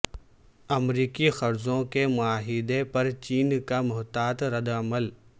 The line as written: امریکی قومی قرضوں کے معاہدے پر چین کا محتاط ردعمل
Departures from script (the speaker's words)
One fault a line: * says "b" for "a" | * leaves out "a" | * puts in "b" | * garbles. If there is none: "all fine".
* leaves out "قومی"